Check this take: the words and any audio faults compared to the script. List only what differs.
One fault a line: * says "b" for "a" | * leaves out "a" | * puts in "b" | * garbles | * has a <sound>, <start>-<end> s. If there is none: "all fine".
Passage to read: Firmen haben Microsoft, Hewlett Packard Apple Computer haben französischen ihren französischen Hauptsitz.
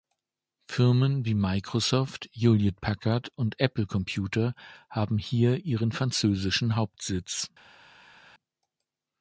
* says "wie" for "haben"
* puts in "und"
* says "hier" for "französischen"